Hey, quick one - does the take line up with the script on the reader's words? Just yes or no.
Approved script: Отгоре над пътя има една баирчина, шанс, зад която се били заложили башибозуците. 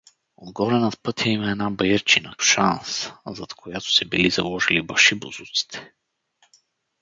yes